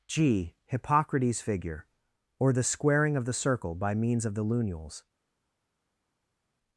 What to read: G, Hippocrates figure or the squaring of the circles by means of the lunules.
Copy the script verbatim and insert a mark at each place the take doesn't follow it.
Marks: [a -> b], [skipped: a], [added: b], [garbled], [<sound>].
G, Hippocrates figure or the squaring of the [circles -> circle] by means of the lunules.